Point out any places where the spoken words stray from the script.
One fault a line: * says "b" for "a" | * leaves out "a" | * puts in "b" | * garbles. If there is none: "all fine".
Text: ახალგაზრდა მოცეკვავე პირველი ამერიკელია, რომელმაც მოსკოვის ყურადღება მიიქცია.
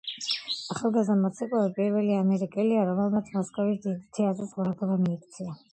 * puts in "დიდი თეატრის"